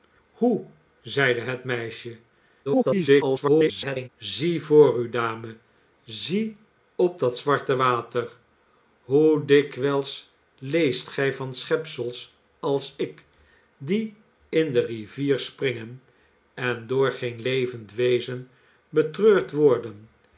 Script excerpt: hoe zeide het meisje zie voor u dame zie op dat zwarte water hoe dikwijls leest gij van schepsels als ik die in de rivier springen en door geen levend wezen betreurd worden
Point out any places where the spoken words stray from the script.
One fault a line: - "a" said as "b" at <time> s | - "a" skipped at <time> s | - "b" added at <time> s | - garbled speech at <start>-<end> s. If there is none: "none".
- garbled speech at 2.6-4.1 s